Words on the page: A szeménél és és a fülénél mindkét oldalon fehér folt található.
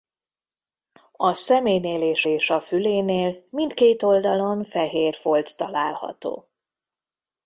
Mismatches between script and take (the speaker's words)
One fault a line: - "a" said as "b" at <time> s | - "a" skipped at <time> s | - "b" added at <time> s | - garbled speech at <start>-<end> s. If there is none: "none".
none